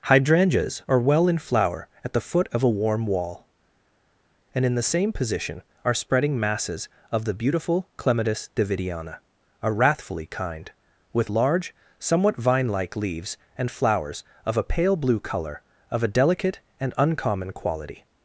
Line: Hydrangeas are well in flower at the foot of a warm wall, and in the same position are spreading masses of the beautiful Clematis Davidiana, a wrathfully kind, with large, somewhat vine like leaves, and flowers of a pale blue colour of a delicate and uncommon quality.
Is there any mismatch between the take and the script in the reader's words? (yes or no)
no